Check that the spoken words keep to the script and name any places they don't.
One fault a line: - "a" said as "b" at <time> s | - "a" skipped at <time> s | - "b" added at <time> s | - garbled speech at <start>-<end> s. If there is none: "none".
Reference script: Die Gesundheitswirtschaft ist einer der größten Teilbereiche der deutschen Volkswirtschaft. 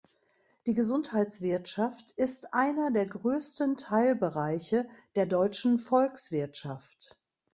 none